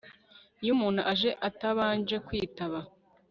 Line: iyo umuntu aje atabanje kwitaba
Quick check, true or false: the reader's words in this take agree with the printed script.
true